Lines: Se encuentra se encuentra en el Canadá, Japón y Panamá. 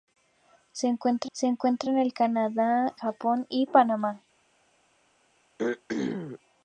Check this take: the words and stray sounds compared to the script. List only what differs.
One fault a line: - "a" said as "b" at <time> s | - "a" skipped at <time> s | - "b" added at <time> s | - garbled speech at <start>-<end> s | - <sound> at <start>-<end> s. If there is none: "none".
- throat clearing at 5.6-6.4 s